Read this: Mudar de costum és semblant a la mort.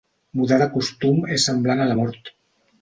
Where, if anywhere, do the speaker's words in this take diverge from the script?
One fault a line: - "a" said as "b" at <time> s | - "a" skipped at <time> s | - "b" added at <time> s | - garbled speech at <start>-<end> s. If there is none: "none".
none